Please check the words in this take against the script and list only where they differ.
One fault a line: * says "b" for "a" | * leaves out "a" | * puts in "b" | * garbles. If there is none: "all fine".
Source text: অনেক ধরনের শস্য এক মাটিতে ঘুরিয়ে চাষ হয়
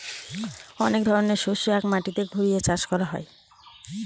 * puts in "করা"